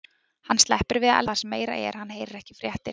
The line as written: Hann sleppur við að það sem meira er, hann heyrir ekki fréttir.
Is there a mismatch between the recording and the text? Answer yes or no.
no